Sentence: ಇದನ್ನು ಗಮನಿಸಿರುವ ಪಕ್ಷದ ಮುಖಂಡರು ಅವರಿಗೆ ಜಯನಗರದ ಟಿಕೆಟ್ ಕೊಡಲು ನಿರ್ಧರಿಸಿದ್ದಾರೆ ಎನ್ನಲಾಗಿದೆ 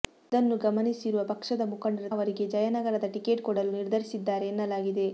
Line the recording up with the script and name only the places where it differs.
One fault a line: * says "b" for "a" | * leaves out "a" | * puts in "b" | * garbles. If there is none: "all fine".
all fine